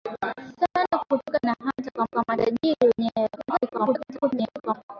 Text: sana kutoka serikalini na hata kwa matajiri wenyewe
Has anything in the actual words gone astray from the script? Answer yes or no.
yes